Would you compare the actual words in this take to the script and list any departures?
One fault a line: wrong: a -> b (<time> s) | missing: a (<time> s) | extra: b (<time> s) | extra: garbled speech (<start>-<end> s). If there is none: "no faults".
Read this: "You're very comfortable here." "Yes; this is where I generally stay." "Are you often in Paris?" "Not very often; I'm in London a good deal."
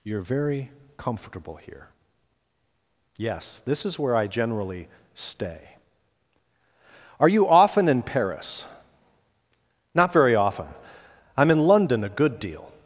no faults